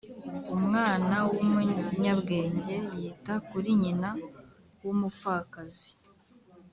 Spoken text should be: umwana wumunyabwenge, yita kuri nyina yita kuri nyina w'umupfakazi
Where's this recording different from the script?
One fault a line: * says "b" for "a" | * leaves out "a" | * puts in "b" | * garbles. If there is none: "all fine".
* leaves out "yita kuri nyina"